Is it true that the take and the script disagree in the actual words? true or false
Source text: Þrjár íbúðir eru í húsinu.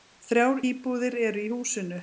false